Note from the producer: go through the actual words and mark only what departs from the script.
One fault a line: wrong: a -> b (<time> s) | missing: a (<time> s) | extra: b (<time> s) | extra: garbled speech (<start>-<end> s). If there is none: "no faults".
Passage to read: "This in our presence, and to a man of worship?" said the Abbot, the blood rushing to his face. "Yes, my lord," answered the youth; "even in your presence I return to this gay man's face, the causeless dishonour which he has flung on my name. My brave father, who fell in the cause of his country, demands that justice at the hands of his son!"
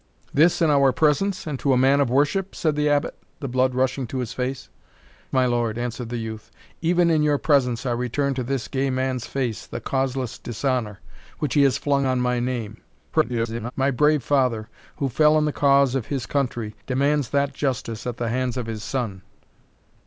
missing: Yes (4.7 s)
extra: garbled speech (13.1-13.7 s)